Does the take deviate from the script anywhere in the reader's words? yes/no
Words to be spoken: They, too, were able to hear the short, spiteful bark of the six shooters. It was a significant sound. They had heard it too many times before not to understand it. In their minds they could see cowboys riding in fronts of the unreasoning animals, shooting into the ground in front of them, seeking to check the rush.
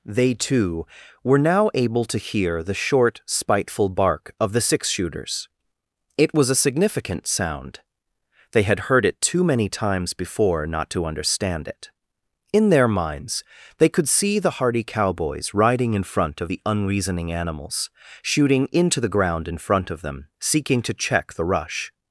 yes